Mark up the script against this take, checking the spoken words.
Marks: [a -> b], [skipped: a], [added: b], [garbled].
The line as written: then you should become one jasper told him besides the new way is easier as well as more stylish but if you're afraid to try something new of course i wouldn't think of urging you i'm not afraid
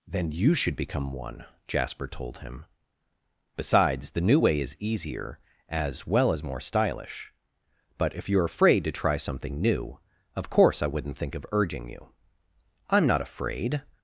then you should become one jasper told him besides the new way is easier as well as more stylish but if you're afraid to try something new of course i wouldn't think of urging you i'm not afraid